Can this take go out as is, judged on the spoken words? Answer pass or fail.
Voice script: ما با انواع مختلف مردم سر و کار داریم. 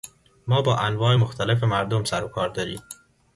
pass